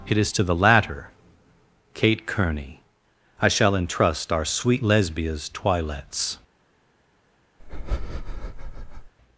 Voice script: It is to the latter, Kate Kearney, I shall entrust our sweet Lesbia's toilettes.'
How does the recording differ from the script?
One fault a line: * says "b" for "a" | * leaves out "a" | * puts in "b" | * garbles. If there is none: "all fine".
all fine